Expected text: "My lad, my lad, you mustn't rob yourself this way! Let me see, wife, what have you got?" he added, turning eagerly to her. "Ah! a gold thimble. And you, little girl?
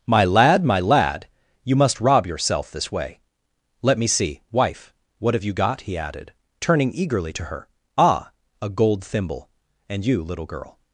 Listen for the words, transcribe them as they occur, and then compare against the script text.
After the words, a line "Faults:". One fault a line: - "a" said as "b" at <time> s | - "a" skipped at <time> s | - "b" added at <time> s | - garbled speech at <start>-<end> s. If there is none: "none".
"My lad, my lad, you must rob yourself this way! Let me see, wife, what have you got?" he added, turning eagerly to her. "Ah! a gold thimble. And you, little girl?
Faults:
- "mustn't" said as "must" at 1.8 s